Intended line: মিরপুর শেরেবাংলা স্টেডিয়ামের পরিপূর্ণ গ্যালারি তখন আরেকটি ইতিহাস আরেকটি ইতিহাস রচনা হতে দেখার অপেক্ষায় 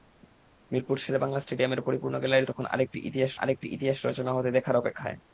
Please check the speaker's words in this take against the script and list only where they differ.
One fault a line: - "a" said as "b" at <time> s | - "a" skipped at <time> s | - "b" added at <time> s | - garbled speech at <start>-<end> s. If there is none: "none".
none